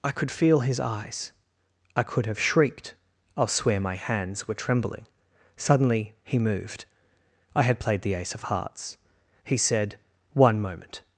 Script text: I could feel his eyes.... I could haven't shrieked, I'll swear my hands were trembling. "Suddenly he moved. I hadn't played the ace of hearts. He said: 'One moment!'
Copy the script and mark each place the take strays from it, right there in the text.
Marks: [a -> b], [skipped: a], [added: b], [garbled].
I could feel his eyes.... I could [haven't -> have] shrieked, I'll swear my hands were trembling. "Suddenly he moved. I [hadn't -> had] played the ace of hearts. He said: 'One moment!'